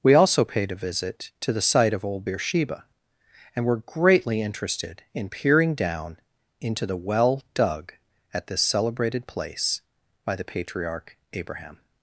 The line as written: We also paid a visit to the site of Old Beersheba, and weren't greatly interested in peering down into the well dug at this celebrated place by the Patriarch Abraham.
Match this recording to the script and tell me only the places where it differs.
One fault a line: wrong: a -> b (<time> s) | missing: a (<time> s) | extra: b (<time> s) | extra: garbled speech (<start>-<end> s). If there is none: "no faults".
wrong: weren't -> were (3.6 s)